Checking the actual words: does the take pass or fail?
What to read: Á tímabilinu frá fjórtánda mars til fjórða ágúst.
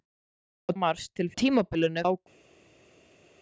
fail